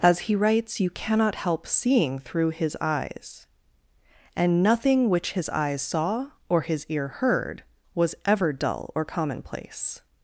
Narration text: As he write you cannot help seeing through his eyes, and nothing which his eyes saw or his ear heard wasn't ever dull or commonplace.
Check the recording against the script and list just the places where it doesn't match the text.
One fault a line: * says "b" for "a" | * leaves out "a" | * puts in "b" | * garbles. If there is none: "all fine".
* says "writes" for "write"
* says "was" for "wasn't"